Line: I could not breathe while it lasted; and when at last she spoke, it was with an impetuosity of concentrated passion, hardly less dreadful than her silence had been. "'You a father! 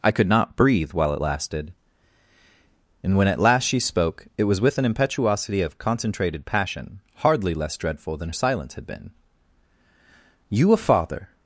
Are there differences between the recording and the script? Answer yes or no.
yes